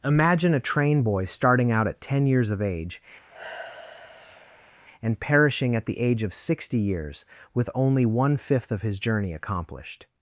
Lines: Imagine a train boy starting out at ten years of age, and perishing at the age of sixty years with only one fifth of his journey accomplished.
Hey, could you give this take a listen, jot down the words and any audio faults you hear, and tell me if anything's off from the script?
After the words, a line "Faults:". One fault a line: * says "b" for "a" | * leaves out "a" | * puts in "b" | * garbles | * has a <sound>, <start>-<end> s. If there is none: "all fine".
Imagine a train boy starting out at ten years of age, and perishing at the age of sixty years with only one fifth of his journey accomplished.
Faults:
* has a sigh, 3.3-4.7 s